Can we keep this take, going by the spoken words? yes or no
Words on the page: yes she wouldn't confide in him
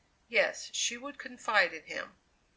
no